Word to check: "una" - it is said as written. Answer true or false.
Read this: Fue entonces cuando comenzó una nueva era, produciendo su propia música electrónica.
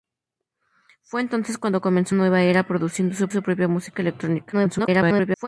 false